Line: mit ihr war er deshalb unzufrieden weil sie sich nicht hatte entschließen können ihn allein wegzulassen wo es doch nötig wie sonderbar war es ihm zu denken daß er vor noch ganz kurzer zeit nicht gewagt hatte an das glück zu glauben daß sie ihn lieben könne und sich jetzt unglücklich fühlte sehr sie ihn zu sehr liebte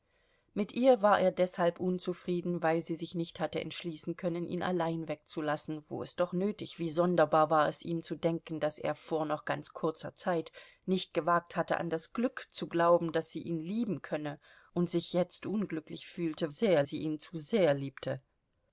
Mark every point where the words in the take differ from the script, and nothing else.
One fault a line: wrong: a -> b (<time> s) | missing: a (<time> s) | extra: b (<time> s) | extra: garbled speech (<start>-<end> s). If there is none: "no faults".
no faults